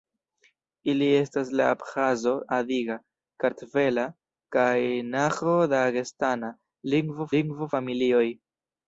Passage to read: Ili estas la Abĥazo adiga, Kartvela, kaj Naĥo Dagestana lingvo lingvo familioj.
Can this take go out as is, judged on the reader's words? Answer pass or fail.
pass